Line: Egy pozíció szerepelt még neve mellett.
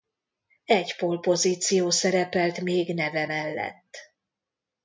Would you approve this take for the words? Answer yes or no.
no